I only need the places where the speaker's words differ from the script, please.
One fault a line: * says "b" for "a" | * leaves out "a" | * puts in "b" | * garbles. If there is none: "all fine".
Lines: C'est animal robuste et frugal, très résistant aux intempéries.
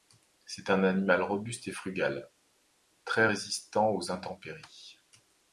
* puts in "un"